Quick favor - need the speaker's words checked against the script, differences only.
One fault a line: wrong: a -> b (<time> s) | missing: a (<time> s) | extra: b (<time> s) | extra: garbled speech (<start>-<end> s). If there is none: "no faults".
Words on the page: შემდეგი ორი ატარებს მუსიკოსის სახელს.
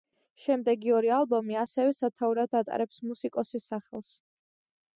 extra: ალბომი ასევე სათაურად (1.2 s)